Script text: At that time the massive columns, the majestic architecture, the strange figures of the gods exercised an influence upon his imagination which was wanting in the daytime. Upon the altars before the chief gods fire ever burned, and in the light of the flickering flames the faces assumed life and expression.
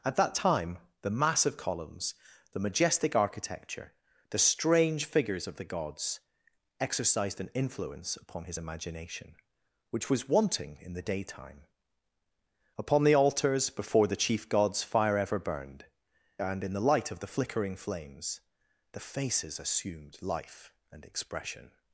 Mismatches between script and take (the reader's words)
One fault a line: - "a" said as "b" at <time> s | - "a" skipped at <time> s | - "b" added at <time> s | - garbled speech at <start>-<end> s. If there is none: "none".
none